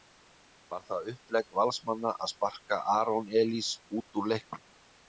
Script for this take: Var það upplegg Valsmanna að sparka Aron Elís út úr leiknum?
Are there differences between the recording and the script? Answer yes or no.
no